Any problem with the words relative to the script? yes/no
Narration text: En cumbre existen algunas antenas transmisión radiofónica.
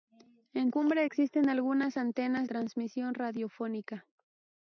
no